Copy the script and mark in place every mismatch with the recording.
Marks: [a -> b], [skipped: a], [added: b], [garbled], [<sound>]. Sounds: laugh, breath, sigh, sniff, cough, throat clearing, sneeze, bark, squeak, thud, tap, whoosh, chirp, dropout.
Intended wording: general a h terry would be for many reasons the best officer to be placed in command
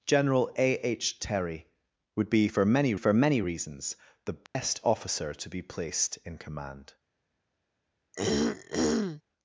general a h terry would be for many [added: for many] reasons the best [dropout] officer to be placed in command [throat clearing]